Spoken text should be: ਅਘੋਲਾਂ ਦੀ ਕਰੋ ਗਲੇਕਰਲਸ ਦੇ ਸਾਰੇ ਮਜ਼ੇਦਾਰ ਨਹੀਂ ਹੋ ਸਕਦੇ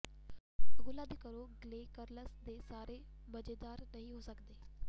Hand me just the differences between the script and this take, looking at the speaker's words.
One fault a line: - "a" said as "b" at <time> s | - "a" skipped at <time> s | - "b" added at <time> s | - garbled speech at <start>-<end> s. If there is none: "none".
none